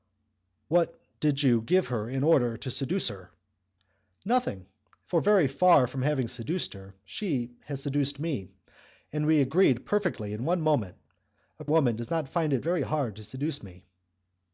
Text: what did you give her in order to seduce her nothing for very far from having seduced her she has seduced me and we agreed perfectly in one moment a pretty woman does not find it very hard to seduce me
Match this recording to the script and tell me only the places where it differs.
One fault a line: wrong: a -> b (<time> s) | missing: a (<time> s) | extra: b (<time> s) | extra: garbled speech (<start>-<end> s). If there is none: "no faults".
missing: pretty (11.7 s)